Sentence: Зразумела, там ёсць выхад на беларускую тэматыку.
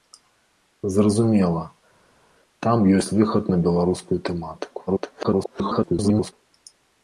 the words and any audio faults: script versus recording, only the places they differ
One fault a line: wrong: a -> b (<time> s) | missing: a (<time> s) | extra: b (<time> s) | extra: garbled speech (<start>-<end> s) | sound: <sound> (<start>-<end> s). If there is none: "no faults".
extra: garbled speech (4.9-6.3 s)